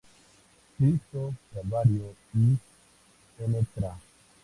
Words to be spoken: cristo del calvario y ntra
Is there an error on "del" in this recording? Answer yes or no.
yes